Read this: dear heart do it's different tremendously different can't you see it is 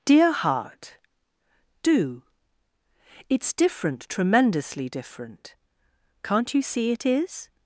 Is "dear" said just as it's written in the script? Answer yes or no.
yes